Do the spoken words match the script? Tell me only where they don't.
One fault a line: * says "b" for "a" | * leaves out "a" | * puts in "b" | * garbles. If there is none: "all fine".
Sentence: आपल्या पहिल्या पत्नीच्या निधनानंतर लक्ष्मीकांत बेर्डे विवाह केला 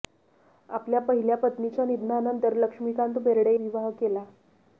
all fine